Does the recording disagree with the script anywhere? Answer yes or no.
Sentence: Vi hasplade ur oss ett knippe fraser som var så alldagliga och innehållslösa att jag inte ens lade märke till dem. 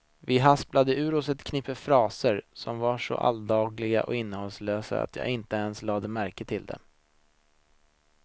no